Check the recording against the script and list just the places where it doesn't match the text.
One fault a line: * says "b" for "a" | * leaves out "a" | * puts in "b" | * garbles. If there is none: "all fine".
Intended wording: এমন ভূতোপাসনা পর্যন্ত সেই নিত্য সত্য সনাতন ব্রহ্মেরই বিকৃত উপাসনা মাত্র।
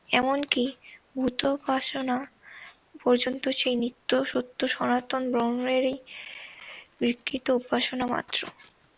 * puts in "কি"